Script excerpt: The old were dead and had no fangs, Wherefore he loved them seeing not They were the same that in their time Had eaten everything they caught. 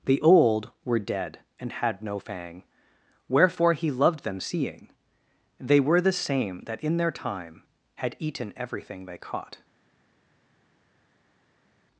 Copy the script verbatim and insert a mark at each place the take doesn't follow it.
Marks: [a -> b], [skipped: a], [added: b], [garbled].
The old were dead and had no [fangs, -> fang] Wherefore he loved them seeing [skipped: not] They were the same that in their time Had eaten everything they caught.